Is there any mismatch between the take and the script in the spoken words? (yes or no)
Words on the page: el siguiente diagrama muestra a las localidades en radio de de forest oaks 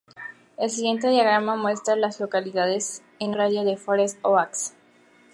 no